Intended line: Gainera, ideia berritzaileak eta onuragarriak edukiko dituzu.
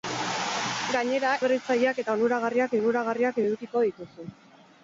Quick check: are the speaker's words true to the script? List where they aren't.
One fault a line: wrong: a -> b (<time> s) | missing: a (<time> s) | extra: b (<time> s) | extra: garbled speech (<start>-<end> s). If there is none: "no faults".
missing: ideia (1.3 s)
extra: onuragarriak (2.8 s)